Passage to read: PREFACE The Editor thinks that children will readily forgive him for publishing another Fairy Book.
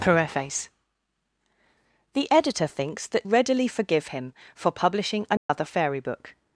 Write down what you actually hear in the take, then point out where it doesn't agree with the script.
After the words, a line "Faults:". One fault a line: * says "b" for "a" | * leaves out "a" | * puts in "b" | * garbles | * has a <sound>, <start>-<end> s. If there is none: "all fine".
PREFACE The Editor thinks that readily forgive him for publishing another Fairy Book.
Faults:
* leaves out "children will"
* has a dropout, 5.4-5.5 s